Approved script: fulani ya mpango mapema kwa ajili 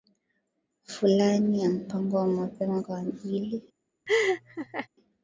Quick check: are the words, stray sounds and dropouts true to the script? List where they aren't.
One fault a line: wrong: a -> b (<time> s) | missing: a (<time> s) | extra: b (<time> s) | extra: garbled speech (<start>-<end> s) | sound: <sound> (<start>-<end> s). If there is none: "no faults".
extra: wa (2.2 s)
sound: laugh (4.1-4.9 s)